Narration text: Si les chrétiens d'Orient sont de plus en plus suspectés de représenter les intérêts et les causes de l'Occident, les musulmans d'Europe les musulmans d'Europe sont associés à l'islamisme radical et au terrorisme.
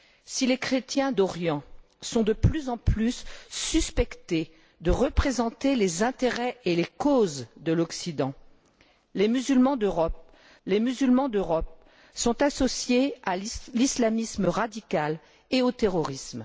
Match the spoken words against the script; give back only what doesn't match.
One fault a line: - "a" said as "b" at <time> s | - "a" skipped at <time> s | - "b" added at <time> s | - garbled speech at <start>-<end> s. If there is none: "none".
none